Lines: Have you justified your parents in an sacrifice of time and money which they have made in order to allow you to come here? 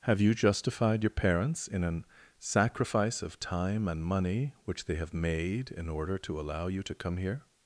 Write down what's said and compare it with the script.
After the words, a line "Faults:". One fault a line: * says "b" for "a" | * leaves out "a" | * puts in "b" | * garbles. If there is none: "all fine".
Have you justified your parents in an sacrifice of time and money which they have made in order to allow you to come here?
Faults:
all fine